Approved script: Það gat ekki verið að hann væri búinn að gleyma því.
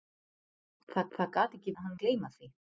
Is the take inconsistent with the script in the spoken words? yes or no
yes